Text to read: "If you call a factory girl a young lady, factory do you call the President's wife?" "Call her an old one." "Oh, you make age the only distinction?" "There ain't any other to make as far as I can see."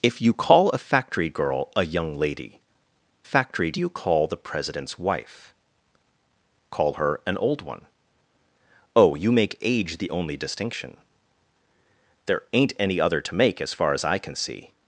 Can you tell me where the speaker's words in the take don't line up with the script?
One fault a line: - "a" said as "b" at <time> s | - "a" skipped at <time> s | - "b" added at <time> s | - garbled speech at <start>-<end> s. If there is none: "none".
none